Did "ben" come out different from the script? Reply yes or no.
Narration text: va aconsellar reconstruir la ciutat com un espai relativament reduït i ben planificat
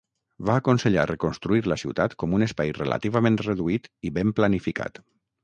no